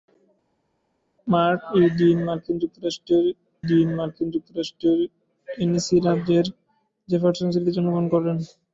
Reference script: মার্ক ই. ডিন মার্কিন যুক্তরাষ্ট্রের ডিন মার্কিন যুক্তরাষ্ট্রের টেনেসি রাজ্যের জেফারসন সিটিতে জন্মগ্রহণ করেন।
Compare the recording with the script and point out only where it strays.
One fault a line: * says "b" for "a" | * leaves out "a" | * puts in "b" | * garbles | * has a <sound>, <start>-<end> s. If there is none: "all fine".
all fine